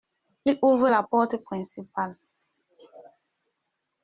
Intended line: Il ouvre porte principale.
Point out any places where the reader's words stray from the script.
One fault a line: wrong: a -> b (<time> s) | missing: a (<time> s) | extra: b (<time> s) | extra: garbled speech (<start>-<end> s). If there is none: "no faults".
extra: la (0.9 s)